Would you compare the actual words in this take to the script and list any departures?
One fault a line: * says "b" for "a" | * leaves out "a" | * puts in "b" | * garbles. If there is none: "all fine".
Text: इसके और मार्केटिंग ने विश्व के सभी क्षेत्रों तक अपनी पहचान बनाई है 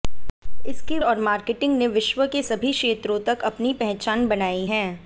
all fine